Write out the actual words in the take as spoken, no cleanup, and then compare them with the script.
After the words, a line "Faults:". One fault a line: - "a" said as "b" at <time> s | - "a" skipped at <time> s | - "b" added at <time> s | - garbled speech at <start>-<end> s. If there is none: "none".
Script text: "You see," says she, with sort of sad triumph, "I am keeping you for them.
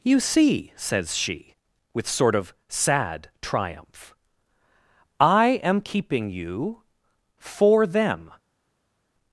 "You see," says she, with sort of sad triumph, "I am keeping you for them.
Faults:
none